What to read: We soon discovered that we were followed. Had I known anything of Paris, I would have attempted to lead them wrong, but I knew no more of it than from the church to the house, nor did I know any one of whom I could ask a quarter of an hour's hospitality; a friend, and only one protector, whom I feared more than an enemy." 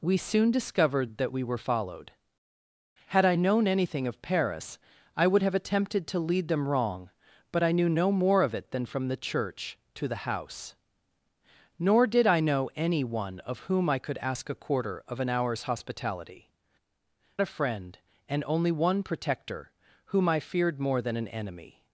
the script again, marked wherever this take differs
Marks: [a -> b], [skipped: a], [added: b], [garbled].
We soon discovered that we were followed. Had I known anything of Paris, I would have attempted to lead them wrong, but I knew no more of it than from the church to the house, nor did I know any one of whom I could ask a quarter of an hour's hospitality; a friend, and only one protector, whom I feared more than an enemy."